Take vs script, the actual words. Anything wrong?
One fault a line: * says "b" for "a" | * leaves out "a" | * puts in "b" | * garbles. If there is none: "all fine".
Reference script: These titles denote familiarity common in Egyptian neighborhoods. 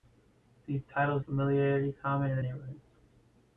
* leaves out "denote"
* leaves out "Egyptian"